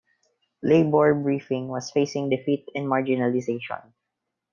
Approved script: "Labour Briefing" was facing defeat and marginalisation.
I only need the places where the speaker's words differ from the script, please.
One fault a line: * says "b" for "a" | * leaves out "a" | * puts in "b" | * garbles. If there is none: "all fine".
all fine